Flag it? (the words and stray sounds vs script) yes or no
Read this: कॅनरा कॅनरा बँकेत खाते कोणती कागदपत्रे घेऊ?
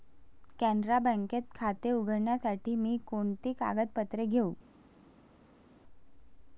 yes